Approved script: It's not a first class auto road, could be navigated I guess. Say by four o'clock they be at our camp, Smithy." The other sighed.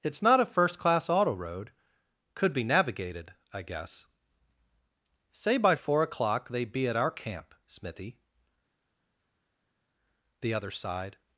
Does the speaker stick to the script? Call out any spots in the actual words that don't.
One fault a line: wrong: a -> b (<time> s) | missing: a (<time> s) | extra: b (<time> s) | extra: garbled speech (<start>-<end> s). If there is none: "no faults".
no faults